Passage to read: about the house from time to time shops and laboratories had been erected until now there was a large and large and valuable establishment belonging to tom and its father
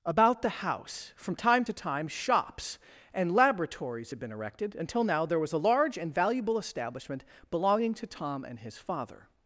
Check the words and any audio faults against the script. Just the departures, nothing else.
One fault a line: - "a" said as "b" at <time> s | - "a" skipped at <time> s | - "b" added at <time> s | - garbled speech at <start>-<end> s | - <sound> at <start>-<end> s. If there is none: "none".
- "large and" skipped at 6.1 s
- "its" said as "his" at 8.6 s